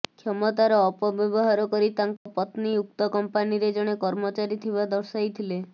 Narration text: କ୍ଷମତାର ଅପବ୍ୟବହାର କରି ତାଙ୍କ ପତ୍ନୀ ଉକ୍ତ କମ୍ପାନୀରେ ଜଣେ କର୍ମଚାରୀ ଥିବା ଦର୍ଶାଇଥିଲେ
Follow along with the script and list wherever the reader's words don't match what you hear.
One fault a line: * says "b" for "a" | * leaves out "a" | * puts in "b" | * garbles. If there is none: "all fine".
all fine